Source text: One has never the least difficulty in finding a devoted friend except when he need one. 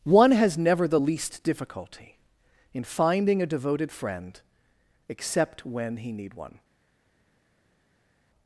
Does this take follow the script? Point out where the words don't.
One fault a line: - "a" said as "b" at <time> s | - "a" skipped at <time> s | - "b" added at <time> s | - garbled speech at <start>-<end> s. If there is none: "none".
none